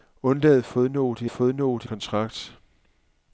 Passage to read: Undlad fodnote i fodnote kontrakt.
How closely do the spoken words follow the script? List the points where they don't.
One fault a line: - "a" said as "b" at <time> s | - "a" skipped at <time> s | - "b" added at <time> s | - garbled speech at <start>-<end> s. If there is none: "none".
none